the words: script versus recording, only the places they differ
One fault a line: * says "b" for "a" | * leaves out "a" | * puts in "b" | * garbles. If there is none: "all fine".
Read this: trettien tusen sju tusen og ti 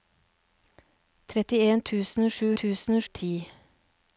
all fine